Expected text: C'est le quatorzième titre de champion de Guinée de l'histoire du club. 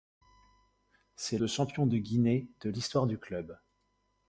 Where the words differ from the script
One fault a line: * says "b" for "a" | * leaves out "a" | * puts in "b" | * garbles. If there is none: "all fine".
* leaves out "le quatorzième titre"